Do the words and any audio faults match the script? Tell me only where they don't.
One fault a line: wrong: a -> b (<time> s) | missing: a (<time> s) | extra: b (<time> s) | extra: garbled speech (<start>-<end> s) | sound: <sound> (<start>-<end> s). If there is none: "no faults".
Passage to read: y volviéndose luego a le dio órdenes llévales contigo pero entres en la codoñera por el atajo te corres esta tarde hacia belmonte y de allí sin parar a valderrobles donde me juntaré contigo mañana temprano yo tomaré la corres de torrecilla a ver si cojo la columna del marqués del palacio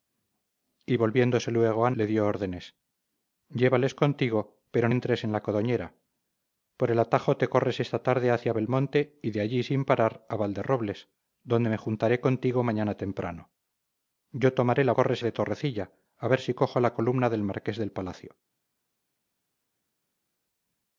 no faults